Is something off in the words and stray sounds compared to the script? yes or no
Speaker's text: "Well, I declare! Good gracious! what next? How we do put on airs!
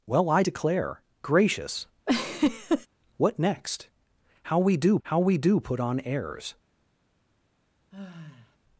yes